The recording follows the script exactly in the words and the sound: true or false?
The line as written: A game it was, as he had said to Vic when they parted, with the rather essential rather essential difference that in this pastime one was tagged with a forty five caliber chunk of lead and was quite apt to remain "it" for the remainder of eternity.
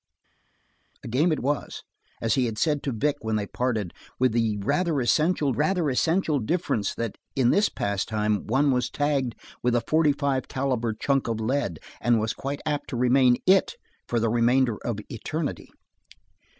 true